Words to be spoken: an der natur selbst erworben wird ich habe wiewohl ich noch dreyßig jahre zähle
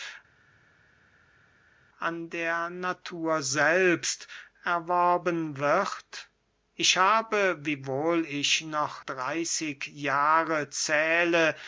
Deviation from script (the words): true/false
false